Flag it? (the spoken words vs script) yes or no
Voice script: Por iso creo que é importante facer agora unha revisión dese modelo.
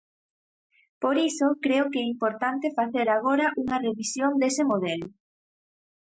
no